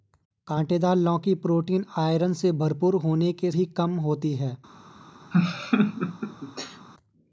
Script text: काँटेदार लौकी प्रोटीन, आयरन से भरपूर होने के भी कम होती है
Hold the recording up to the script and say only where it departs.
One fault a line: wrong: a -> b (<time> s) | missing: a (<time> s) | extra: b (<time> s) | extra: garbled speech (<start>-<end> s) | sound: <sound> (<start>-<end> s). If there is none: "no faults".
sound: laugh (5.3-6.9 s)